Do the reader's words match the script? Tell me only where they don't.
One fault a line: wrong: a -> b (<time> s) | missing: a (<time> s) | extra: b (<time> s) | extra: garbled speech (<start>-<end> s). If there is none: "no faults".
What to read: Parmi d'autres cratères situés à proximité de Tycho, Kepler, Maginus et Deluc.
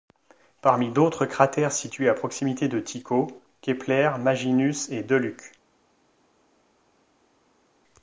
no faults